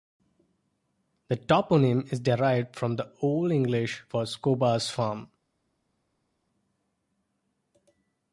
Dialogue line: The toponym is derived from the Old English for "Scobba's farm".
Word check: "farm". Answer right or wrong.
right